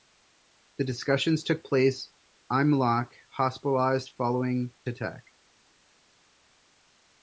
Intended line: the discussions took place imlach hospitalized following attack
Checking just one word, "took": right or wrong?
right